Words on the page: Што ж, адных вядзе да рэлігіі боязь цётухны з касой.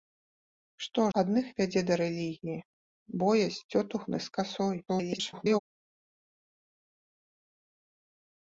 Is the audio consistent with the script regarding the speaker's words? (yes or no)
no